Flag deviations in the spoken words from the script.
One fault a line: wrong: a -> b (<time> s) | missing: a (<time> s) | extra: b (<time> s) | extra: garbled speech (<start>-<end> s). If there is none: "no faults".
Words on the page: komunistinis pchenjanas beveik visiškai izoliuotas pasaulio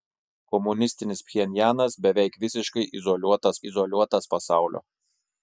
extra: izoliuotas (3.7 s)